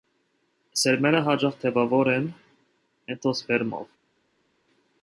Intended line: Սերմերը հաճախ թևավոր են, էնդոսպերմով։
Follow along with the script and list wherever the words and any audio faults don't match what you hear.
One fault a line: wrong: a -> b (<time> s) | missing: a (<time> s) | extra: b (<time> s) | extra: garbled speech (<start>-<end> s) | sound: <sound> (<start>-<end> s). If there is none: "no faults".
no faults